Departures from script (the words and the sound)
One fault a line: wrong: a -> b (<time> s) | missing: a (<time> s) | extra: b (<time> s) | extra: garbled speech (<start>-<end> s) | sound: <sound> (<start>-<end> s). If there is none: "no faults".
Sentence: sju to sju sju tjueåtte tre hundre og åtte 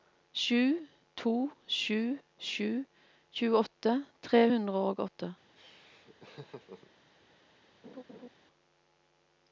sound: laugh (5.6-6.9 s)
sound: laugh (7.8-8.3 s)